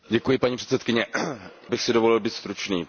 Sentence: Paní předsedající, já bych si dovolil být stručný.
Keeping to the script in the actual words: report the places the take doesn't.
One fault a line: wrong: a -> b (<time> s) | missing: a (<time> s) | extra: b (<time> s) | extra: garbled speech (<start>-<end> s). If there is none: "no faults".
missing: já (1.1 s)